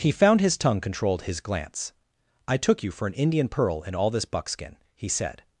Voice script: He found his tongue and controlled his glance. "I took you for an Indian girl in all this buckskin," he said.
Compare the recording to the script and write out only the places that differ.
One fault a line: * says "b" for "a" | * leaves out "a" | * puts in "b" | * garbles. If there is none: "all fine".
* leaves out "and"
* says "pearl" for "girl"